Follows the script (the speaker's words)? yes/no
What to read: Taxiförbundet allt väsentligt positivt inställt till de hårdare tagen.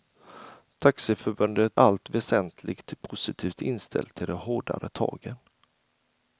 yes